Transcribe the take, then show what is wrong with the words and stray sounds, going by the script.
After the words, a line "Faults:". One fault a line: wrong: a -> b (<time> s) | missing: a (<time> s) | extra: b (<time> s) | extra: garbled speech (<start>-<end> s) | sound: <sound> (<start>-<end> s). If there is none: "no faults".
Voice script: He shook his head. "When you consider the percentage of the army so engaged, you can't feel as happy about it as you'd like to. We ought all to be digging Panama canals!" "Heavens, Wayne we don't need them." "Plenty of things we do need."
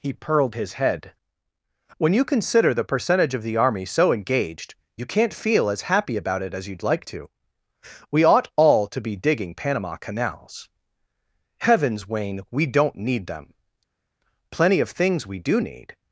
He purled his head. "When you consider the percentage of the army so engaged, you can't feel as happy about it as you'd like to. We ought all to be digging Panama canals!" "Heavens, Wayne we don't need them." "Plenty of things we do need."
Faults:
wrong: shook -> purled (0.1 s)